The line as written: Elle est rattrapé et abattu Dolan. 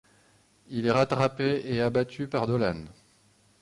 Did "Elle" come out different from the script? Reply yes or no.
yes